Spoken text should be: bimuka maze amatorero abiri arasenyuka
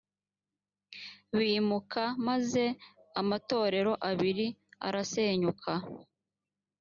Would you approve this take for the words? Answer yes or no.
yes